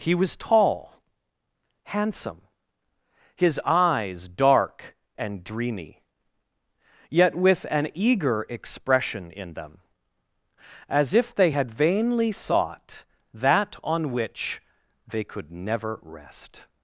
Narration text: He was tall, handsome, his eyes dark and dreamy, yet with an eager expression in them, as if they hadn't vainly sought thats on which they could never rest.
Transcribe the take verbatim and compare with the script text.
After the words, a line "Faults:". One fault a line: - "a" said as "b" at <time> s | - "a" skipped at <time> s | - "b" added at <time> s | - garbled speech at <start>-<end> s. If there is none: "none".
He was tall, handsome, his eyes dark and dreamy, yet with an eager expression in them, as if they had vainly sought that on which they could never rest.
Faults:
- "hadn't" said as "had" at 11.5 s
- "thats" said as "that" at 13.3 s